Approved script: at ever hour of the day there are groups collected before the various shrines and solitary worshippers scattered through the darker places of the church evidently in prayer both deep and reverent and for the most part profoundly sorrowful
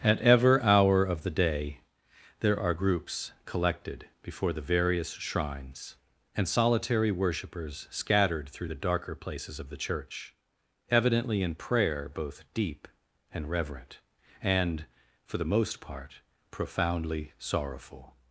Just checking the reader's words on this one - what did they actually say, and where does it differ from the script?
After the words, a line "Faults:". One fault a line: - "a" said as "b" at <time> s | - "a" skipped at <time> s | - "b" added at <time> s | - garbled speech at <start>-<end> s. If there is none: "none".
at ever hour of the day there are groups collected before the various shrines and solitary worshippers scattered through the darker places of the church evidently in prayer both deep and reverent and for the most part profoundly sorrowful
Faults:
none